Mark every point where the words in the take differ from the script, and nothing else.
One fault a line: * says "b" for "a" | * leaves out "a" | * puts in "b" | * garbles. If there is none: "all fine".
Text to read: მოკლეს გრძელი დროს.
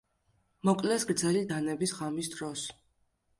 * puts in "დანების ღამის"